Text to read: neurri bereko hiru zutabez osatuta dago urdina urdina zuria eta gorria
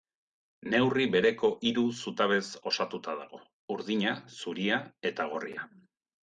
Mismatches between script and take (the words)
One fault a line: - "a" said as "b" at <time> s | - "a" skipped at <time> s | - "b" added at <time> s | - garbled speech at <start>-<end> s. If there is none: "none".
- "urdina" skipped at 4.1 s